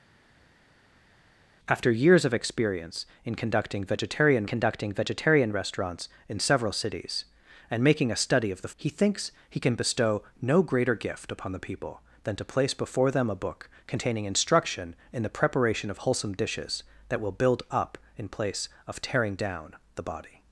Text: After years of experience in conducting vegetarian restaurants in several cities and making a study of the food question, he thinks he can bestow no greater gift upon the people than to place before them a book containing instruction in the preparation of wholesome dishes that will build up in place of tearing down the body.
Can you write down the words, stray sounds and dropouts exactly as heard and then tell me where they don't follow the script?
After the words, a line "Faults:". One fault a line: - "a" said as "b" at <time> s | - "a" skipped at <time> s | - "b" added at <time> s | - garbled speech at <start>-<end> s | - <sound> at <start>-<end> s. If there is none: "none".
After years of experience in conducting vegetarian conducting vegetarian restaurants in several cities and making a study of the he thinks he can bestow no greater gift upon the people than to place before them a book containing instruction in the preparation of wholesome dishes that will build up in place of tearing down the body.
Faults:
- "conducting vegetarian" added at 4.5 s
- "food question" skipped at 8.7 s